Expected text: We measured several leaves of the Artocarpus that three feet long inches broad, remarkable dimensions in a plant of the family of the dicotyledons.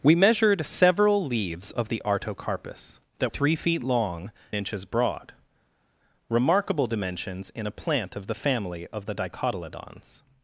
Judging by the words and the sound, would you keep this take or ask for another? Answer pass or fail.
pass